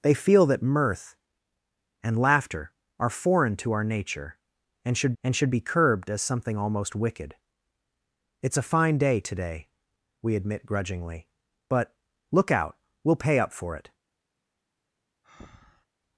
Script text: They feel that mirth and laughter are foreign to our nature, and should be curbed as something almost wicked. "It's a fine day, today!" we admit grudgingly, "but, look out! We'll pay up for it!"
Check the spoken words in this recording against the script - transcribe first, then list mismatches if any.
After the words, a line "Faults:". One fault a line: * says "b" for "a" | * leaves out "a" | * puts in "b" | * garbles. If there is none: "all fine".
They feel that mirth and laughter are foreign to our nature, and should and should be curbed as something almost wicked. "It's a fine day, today!" we admit grudgingly, "but, look out! We'll pay up for it!"
Faults:
* puts in "and should"